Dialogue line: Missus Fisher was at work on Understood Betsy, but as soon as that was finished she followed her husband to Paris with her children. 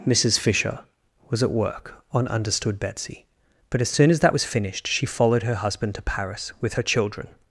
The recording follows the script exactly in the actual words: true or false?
true